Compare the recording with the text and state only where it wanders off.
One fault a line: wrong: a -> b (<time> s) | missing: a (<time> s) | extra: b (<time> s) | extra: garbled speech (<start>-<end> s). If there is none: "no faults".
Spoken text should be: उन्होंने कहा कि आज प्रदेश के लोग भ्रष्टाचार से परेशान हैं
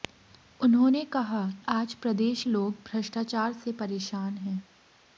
missing: कि (1.4 s)
missing: के (2.4 s)